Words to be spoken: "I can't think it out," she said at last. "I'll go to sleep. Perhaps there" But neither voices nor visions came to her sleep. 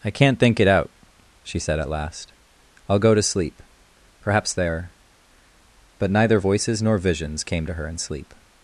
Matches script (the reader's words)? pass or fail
fail